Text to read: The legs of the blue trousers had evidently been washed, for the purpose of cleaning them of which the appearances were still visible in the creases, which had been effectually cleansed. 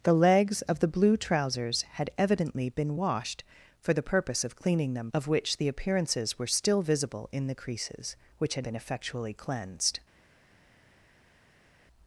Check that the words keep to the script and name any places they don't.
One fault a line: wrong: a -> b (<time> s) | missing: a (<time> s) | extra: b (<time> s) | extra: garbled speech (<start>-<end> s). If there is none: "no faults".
no faults